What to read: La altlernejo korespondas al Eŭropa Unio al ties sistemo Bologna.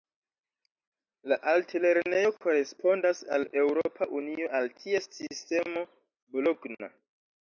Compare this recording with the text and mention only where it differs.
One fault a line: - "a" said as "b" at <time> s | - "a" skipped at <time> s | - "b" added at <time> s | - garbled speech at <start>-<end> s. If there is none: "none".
none